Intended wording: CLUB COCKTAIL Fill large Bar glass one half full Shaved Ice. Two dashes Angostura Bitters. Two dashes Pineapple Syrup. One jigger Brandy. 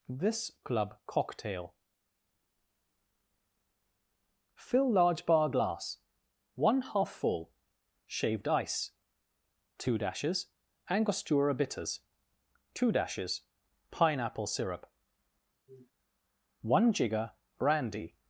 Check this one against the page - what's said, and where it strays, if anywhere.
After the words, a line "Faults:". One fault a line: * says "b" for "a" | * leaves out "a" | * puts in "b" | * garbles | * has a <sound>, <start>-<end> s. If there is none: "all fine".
this CLUB COCKTAIL Fill large Bar glass one half full Shaved Ice. Two dashes Angostura Bitters. Two dashes Pineapple Syrup. One jigger Brandy.
Faults:
* puts in "this"
* has a sniff, 15.7-15.9 s